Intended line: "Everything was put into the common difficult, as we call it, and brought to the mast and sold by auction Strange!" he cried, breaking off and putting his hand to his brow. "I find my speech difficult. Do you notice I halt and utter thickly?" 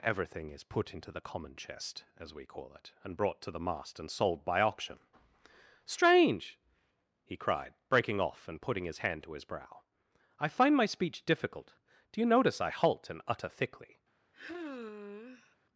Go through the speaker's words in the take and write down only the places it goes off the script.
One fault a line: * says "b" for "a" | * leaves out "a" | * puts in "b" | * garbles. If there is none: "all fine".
* says "is" for "was"
* says "chest" for "difficult"